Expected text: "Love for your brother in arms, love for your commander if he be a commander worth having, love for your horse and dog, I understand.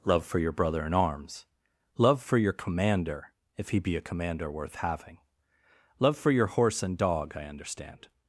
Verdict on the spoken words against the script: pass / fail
pass